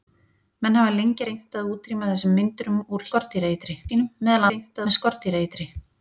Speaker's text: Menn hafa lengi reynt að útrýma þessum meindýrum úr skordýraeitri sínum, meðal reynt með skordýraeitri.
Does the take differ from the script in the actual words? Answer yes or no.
no